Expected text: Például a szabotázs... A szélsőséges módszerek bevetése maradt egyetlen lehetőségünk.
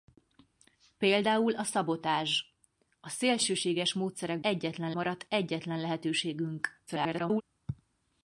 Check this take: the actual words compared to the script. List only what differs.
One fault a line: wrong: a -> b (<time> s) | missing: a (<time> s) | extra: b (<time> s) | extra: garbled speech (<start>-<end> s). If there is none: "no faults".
wrong: bevetése -> egyetlen (4.4 s)
extra: garbled speech (6.9-7.4 s)